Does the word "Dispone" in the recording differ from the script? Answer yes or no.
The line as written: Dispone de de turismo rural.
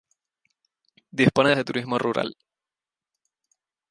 no